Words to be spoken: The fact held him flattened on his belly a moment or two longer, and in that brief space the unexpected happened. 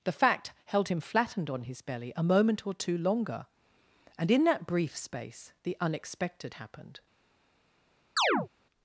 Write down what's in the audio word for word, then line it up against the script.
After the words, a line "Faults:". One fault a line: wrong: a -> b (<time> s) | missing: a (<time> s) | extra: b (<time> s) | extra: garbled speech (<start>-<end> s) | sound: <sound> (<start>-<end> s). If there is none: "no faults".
The fact held him flattened on his belly a moment or two longer, and in that brief space the unexpected happened.
Faults:
sound: chirp (8.2-8.5 s)